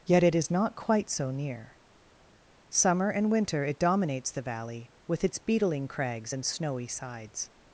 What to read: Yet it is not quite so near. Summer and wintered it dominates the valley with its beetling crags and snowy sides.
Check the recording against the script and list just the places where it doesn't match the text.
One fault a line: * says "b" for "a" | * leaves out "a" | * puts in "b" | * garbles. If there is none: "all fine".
* says "winter" for "wintered"